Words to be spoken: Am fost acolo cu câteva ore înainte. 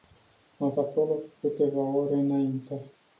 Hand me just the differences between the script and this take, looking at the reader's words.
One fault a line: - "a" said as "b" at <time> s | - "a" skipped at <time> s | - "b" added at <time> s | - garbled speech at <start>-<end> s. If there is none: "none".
- "fost" skipped at 0.7 s